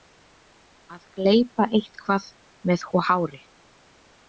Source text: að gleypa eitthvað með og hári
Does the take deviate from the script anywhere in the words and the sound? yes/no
no